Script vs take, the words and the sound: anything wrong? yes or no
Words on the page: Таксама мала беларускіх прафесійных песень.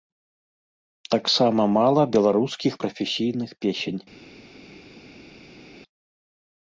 no